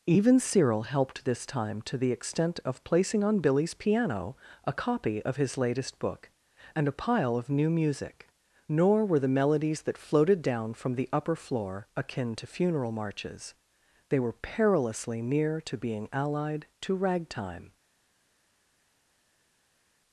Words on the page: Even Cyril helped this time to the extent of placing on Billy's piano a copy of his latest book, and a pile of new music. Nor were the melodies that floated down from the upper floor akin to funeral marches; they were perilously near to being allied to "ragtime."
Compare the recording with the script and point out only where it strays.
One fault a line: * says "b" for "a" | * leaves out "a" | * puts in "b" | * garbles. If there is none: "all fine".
all fine